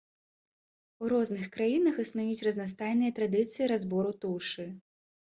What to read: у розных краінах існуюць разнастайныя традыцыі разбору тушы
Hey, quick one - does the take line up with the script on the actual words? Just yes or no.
yes